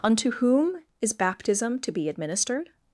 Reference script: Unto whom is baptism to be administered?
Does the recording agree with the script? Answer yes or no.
yes